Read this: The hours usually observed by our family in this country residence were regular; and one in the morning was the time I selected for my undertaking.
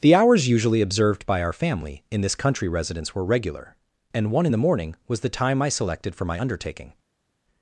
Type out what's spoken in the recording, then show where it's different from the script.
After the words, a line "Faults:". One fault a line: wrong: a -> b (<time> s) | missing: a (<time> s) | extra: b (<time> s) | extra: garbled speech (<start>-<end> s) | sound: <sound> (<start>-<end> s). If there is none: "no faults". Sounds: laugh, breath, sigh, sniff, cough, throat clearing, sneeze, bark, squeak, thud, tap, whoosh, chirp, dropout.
The hours usually observed by our family in this country residence were regular; and one in the morning was the time I selected for my undertaking.
Faults:
no faults